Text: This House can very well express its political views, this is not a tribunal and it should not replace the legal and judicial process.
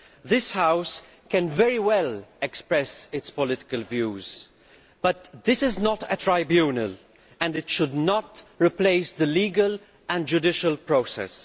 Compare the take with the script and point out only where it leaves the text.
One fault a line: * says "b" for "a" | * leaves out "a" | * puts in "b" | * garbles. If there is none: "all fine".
* puts in "but"